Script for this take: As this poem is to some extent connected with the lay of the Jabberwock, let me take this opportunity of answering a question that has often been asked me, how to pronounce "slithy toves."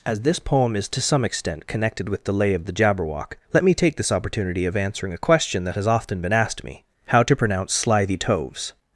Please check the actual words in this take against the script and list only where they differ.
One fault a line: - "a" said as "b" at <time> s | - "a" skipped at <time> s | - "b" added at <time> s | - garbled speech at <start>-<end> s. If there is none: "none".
none